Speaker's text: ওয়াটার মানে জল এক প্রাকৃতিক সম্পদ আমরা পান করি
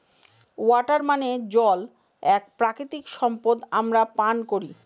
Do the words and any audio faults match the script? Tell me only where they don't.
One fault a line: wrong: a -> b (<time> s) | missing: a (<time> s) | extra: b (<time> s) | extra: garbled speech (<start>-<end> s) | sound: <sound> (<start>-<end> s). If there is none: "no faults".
no faults